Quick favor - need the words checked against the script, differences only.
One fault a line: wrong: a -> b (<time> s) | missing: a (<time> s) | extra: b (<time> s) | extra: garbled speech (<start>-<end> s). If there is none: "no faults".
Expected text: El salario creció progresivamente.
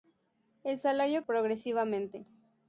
missing: creció (1.2 s)